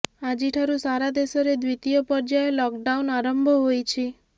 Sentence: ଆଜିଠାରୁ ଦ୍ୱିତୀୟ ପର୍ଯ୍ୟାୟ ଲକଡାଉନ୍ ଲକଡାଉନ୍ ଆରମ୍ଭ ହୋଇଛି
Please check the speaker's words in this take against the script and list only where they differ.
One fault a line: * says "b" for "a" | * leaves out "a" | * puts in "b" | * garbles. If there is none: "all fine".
* puts in "ସାରା ଦେଶରେ"
* leaves out "ଲକଡାଉନ୍"